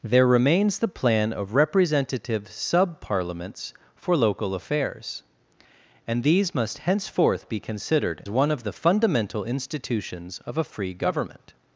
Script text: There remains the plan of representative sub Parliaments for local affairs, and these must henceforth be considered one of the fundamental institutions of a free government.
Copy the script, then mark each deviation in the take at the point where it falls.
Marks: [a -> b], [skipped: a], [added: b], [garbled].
There remains the plan of representative sub Parliaments for local affairs, and these must henceforth be considered one of the fundamental institutions of a free government.